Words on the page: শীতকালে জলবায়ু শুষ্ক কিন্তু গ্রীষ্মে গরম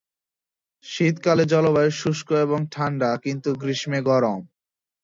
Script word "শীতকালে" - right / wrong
right